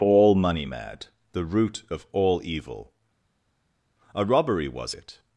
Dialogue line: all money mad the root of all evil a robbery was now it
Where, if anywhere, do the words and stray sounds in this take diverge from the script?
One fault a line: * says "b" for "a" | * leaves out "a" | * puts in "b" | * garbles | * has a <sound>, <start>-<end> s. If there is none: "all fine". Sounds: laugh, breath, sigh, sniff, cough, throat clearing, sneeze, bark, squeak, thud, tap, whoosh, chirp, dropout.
* leaves out "now"